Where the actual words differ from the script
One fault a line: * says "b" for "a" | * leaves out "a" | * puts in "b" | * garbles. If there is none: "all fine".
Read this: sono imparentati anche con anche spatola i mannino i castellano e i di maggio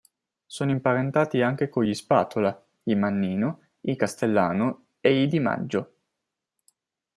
* says "gli" for "anche"